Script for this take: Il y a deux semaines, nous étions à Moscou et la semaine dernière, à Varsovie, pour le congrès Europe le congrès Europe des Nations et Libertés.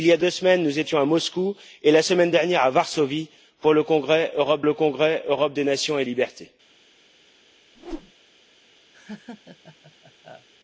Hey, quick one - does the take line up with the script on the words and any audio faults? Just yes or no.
no